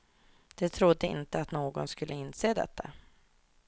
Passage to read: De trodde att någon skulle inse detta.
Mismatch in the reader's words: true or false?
true